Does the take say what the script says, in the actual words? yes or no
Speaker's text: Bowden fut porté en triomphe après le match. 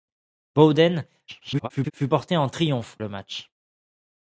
no